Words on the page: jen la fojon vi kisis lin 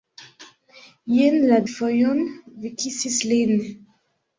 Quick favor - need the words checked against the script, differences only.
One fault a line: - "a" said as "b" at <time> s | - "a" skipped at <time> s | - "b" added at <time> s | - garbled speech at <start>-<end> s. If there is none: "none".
none